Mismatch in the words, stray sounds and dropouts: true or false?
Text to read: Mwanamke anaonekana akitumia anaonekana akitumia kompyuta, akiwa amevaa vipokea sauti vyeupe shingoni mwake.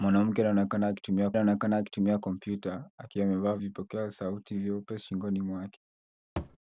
true